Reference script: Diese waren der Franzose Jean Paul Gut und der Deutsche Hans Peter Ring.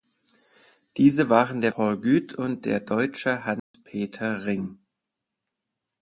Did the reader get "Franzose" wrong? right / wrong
wrong